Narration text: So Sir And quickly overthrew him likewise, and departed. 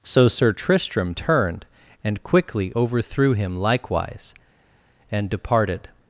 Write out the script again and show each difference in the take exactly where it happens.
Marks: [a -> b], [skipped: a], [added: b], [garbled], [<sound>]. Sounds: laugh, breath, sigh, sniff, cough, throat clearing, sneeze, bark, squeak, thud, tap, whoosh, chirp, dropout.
So Sir [added: Tristram turned] And quickly overthrew him likewise, and departed.